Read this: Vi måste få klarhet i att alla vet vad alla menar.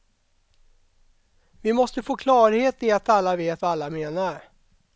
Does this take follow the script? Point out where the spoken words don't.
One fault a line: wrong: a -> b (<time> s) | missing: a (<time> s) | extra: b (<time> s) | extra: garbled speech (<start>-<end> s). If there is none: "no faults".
no faults